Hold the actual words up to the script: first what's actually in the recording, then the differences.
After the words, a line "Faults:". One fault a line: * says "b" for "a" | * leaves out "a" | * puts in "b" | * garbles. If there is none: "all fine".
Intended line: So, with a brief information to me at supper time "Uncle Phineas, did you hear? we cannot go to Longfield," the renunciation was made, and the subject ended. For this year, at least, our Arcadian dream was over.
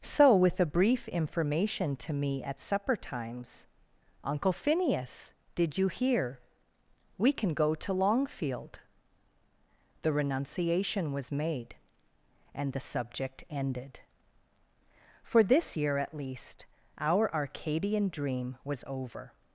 So, with a brief information to me at supper times "Uncle Phineas, did you hear? we can go to Longfield," the renunciation was made, and the subject ended. For this year, at least, our Arcadian dream was over.
Faults:
* says "times" for "time"
* says "can" for "cannot"